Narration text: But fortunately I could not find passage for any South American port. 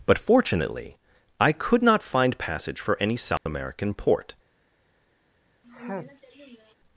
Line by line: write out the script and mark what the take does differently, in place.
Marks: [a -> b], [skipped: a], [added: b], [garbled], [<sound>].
But fortunately I could not find passage for any South [dropout] American port. [sneeze]